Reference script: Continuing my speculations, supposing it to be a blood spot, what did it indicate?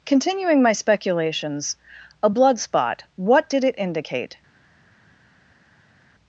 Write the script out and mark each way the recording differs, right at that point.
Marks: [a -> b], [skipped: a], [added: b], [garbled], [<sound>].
Continuing my speculations, [skipped: supposing it to be] a blood spot, what did it indicate?